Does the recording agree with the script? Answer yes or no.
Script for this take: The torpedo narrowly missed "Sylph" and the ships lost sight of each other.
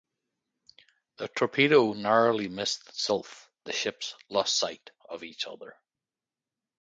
no